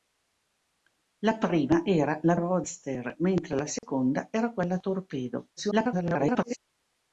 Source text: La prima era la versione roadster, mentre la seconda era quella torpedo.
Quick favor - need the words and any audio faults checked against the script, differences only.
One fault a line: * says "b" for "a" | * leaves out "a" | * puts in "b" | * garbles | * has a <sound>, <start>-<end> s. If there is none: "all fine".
* leaves out "versione"
* has a dropout, 3.8-3.8 s
* garbles